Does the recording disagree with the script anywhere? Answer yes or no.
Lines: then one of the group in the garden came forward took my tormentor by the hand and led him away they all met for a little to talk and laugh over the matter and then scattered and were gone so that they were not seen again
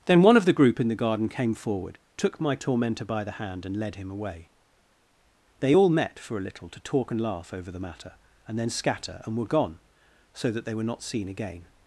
yes